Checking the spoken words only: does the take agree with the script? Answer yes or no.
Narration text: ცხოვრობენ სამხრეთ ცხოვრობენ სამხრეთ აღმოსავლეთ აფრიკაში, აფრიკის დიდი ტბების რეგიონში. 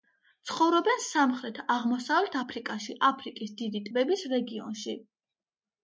no